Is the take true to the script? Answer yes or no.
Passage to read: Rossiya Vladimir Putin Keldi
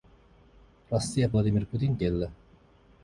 yes